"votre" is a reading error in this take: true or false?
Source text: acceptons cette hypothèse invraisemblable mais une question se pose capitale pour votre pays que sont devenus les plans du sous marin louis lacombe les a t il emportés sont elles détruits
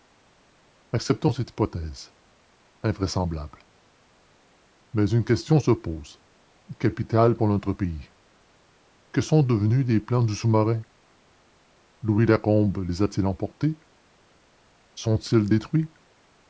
true